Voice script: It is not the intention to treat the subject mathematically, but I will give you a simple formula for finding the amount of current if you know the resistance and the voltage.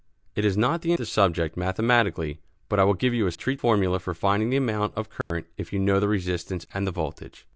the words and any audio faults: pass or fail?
fail